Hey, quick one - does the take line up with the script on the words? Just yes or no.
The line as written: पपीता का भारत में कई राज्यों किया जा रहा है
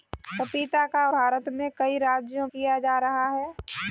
yes